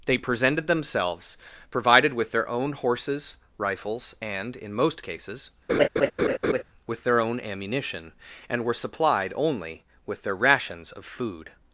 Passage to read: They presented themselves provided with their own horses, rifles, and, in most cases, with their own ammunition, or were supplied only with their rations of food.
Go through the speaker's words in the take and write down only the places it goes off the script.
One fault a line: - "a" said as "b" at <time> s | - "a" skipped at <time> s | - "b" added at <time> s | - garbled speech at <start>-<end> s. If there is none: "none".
- "or" said as "and" at 8.5 s